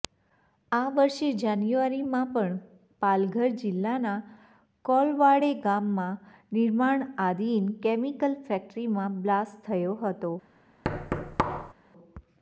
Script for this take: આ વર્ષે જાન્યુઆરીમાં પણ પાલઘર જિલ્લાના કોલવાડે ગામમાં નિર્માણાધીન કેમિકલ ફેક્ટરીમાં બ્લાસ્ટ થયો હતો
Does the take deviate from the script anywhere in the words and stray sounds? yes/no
yes